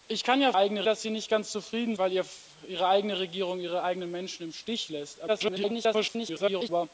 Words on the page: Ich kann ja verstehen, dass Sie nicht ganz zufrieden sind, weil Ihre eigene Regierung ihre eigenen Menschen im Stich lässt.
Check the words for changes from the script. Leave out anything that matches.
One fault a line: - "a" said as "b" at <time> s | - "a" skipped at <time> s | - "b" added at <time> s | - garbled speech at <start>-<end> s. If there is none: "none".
- "verstehen" said as "eigene" at 0.5 s
- "sind" skipped at 1.9 s
- garbled speech at 5.3-6.7 s